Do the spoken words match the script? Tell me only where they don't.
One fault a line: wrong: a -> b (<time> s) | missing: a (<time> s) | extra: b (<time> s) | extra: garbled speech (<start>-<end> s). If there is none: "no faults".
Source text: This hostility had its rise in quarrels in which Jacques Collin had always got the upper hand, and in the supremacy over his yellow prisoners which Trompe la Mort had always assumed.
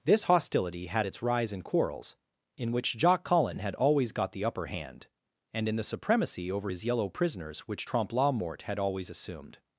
no faults